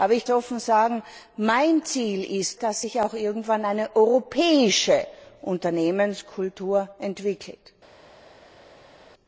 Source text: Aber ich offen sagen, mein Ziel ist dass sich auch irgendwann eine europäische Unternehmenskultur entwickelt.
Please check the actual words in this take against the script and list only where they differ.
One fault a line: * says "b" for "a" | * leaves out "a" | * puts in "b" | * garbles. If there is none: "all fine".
all fine